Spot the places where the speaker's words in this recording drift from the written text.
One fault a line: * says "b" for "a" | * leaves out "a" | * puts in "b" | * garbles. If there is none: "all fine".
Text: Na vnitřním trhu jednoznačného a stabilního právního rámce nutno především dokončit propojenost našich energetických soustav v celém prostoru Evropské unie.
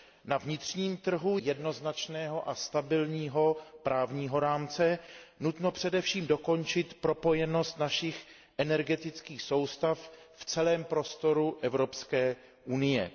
all fine